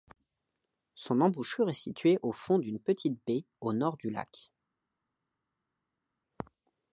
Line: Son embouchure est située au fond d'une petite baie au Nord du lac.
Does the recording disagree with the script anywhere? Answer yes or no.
no